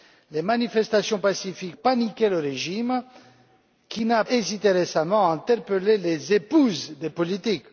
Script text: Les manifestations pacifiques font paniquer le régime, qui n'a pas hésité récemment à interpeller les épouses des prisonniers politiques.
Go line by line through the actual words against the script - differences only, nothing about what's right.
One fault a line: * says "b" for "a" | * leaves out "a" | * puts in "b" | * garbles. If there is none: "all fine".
* leaves out "font"
* leaves out "pas"
* leaves out "prisonniers"